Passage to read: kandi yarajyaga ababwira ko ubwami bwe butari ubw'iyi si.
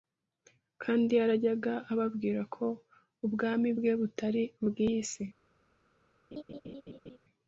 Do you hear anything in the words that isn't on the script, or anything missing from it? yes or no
no